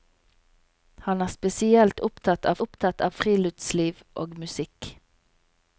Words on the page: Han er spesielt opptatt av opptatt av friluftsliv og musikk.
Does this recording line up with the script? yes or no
yes